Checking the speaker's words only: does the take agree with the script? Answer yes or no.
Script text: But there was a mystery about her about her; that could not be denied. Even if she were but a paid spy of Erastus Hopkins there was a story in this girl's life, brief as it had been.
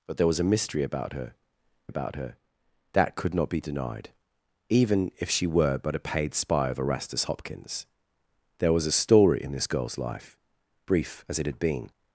yes